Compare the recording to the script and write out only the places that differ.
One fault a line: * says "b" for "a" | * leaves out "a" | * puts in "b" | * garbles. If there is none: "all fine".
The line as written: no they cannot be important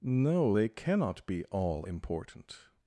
* puts in "all"